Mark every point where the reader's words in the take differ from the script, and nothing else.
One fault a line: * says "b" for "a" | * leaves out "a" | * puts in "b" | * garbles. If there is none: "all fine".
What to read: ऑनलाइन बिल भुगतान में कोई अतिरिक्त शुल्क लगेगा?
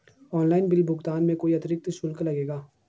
all fine